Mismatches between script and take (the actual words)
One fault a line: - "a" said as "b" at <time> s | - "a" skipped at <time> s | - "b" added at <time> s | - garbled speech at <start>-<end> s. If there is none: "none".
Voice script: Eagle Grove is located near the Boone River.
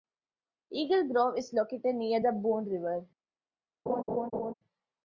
none